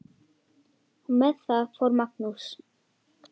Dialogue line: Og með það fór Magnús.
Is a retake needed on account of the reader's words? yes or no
no